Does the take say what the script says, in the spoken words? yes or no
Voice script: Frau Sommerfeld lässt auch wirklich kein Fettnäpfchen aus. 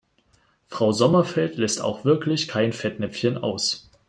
yes